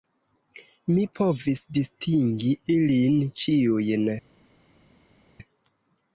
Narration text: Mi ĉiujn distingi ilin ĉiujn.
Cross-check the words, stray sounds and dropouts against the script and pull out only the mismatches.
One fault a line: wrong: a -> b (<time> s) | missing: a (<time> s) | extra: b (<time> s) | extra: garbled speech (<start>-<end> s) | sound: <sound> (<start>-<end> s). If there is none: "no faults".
wrong: ĉiujn -> povis (1.2 s)